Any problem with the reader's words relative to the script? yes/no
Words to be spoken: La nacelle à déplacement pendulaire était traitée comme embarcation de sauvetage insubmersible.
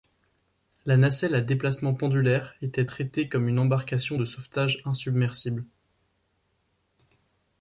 yes